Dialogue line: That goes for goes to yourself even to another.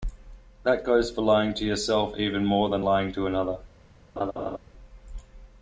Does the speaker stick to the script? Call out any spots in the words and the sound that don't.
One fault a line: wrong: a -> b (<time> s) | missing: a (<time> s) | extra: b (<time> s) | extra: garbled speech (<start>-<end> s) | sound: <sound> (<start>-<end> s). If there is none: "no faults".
wrong: goes -> lying (1.2 s)
extra: more than lying (2.4 s)
sound: laugh (4.2-4.6 s)